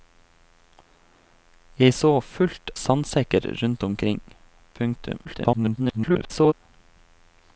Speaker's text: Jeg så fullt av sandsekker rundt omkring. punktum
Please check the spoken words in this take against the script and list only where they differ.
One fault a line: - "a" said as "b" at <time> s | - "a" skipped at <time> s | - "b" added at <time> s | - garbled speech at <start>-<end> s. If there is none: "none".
- "av" skipped at 2.7 s
- garbled speech at 5.2-6.5 s